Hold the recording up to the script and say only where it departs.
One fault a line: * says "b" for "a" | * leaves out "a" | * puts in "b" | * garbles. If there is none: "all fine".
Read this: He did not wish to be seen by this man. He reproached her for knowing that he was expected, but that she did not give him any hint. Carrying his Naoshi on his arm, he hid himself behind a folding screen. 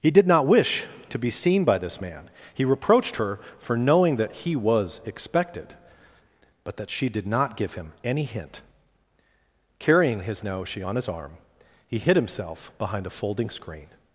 all fine